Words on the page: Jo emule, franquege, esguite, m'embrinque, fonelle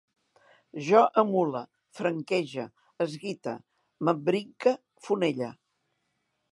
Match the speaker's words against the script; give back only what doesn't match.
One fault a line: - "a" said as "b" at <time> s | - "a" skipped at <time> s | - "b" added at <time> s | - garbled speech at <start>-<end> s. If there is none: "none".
none